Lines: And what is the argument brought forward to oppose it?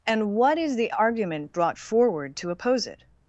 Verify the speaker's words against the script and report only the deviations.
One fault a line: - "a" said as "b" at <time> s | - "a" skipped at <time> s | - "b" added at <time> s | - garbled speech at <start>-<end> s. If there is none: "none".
none